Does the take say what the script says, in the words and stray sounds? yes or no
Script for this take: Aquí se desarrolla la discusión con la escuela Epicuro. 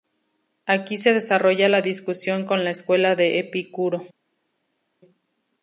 no